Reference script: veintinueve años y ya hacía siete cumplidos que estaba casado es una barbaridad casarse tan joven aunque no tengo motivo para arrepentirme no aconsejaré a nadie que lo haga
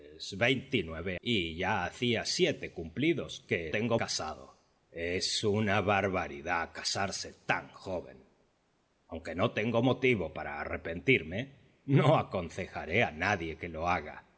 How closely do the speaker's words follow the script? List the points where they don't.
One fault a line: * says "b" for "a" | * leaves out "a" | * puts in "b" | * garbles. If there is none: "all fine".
* leaves out "años"
* says "tengo" for "estaba"